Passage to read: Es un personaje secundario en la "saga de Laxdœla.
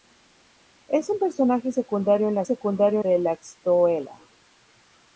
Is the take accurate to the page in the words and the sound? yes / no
no